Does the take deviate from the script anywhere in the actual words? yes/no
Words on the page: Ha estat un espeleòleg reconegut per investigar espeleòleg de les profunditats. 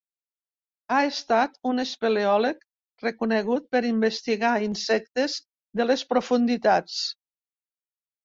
yes